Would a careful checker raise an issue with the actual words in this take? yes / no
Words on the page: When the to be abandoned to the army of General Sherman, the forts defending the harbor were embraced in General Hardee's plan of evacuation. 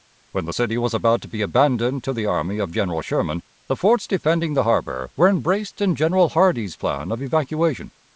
yes